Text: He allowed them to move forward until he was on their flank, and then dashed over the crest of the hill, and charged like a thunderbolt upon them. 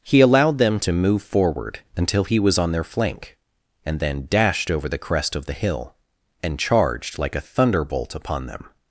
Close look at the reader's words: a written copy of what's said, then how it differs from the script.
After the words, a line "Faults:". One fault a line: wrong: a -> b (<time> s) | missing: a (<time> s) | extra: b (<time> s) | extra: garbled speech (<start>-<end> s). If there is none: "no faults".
He allowed them to move forward until he was on their flank, and then dashed over the crest of the hill, and charged like a thunderbolt upon them.
Faults:
no faults